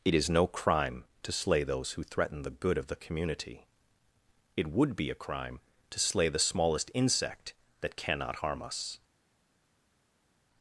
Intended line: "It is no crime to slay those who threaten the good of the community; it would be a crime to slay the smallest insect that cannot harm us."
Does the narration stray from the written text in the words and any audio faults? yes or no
no